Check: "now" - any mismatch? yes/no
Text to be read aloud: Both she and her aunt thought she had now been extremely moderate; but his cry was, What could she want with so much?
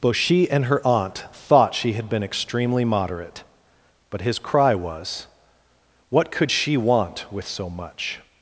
yes